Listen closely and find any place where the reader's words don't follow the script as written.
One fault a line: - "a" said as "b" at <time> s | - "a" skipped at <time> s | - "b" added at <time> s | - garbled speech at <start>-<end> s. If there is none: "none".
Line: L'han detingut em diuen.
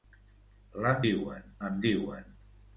- "detingut" said as "diuen" at 1.0 s